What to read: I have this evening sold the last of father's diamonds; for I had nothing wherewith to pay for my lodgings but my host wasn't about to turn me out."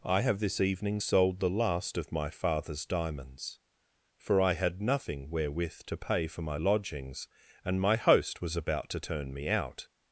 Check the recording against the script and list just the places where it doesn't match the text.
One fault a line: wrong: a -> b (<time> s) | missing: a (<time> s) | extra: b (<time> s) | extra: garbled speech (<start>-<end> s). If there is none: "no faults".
extra: my (2.1 s)
wrong: but -> and (7.7 s)
wrong: wasn't -> was (8.4 s)